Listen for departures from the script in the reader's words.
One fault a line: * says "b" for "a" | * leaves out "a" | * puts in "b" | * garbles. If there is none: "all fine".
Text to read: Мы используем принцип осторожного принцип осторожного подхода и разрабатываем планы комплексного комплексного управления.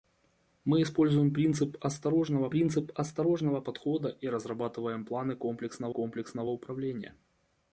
all fine